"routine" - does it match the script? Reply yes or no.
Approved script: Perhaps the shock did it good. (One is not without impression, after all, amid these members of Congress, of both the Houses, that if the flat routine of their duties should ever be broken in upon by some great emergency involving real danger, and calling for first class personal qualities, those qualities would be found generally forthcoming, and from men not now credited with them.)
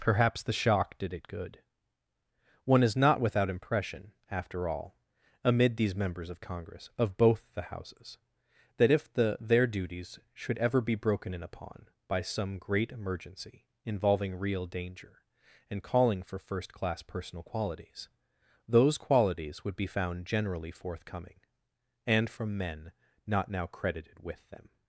no